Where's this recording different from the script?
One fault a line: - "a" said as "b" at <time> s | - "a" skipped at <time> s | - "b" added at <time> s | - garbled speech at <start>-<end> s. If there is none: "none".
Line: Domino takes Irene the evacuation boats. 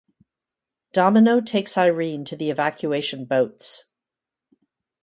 - "to" added at 2.2 s